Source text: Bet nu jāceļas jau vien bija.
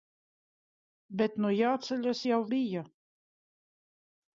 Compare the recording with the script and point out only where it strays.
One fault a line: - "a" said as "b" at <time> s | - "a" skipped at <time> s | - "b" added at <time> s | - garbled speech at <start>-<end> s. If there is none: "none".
- "vien" skipped at 2.4 s